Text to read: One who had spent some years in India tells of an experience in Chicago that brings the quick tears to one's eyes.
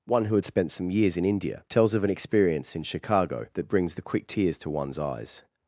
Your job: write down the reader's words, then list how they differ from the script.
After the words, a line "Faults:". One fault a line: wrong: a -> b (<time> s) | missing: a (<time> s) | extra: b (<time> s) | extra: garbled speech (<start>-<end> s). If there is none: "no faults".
One who had spent some years in India tells of an experience in Chicago that brings the quick tears to one's eyes.
Faults:
no faults